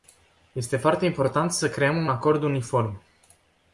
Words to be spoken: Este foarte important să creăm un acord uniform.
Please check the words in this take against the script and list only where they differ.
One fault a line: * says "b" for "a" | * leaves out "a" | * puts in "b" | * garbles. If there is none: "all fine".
* leaves out "un"